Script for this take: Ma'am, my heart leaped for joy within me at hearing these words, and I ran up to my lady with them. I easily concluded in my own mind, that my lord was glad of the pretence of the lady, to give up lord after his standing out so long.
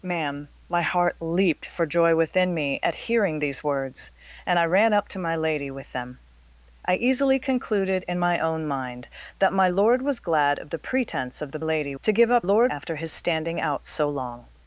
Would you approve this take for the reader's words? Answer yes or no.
yes